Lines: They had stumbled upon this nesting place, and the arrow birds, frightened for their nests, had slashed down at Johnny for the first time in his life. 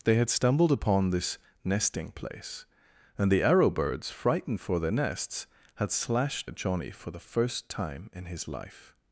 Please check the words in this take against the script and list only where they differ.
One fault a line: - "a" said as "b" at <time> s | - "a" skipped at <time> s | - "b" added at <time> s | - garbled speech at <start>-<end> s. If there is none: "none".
- "down" skipped at 6.5 s